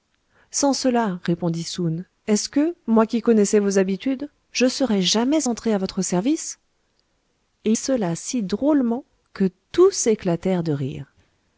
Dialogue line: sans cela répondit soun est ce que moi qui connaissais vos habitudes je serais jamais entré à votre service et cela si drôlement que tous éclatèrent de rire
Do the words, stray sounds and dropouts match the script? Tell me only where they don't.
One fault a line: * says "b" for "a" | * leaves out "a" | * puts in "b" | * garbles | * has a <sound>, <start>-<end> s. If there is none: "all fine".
all fine